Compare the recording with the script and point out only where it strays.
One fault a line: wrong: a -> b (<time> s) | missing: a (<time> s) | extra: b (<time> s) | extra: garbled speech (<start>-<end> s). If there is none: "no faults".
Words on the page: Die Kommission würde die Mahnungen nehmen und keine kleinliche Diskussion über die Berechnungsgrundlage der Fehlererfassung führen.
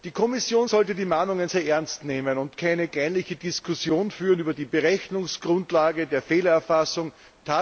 wrong: würde -> sollte (0.6 s)
extra: sehr ernst (1.5 s)